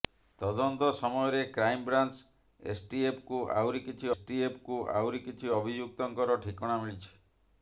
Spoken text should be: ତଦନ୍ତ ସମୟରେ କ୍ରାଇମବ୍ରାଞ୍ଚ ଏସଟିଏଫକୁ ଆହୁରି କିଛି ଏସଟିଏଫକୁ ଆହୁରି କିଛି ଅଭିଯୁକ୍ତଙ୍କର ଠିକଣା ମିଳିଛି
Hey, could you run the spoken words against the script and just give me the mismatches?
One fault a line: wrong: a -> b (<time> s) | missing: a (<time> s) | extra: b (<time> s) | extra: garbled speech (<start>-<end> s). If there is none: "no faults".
no faults